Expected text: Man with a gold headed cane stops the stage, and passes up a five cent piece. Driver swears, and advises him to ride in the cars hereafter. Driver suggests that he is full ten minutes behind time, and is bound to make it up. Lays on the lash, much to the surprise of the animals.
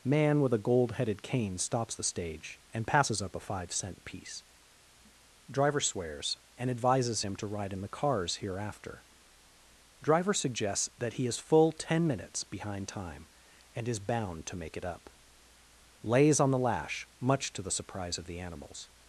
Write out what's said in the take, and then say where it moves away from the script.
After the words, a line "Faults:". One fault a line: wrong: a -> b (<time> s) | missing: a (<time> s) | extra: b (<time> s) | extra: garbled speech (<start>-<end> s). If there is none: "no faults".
Man with a gold headed cane stops the stage, and passes up a five cent piece. Driver swears, and advises him to ride in the cars hereafter. Driver suggests that he is full ten minutes behind time, and is bound to make it up. Lays on the lash, much to the surprise of the animals.
Faults:
no faults